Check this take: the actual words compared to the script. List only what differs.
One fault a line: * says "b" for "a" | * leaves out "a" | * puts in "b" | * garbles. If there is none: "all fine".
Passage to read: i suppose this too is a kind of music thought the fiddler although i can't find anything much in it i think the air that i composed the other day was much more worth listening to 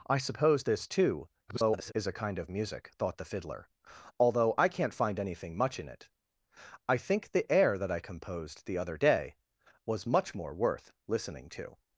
* garbles